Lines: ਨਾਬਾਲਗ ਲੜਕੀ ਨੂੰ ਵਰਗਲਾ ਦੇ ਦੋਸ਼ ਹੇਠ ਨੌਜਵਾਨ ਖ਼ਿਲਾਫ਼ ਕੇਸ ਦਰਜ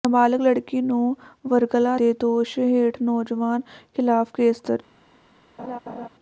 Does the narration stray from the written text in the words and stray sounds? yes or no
yes